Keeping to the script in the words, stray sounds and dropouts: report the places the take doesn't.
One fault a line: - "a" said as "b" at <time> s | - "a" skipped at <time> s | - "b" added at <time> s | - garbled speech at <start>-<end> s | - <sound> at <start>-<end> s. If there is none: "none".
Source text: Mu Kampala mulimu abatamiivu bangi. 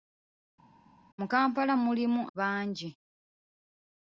- "abatamiivu" skipped at 2.2 s